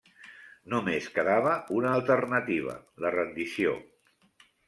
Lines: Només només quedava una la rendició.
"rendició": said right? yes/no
yes